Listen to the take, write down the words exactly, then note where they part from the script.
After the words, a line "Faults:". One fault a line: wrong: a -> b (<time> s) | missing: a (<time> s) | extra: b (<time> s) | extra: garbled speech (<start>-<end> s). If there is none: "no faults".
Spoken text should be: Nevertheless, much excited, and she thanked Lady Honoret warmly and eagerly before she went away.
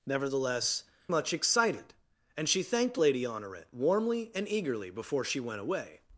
Nevertheless, much excited, and she thanked Lady Honoret warmly and eagerly before she went away.
Faults:
no faults